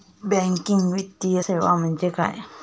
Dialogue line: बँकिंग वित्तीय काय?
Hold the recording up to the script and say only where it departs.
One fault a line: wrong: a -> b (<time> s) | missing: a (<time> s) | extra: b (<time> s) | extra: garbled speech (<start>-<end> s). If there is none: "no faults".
extra: सेवा म्हणजे (1.4 s)